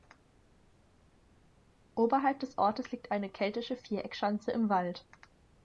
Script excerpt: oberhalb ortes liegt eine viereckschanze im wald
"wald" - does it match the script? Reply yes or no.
yes